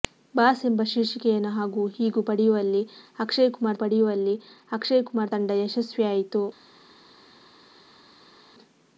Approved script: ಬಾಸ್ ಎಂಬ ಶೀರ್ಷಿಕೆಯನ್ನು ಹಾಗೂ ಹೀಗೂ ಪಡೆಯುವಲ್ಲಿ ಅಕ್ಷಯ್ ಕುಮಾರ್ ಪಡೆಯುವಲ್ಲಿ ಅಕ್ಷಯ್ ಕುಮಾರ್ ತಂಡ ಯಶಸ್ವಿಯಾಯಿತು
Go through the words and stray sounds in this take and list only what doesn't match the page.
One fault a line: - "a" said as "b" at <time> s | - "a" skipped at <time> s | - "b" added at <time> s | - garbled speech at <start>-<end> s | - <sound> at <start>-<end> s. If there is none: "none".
none